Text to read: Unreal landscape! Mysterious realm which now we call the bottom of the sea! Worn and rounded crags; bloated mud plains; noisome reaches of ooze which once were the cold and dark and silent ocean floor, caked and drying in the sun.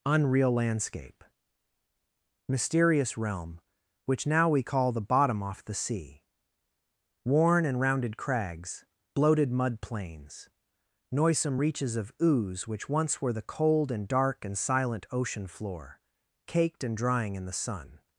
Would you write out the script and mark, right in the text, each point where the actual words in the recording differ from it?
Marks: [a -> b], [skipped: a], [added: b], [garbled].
Unreal landscape! Mysterious realm which now we call the bottom [of -> off] the sea! Worn and rounded crags; bloated mud plains; noisome reaches of ooze which once were the cold and dark and silent ocean floor, caked and drying in the sun.